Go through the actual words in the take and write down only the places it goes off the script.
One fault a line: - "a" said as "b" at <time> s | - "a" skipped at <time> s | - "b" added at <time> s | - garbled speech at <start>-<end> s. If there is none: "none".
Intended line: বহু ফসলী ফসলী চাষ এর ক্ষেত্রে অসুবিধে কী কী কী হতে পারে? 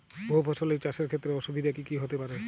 - "ফসলী" skipped at 0.8 s
- "কী" skipped at 2.0 s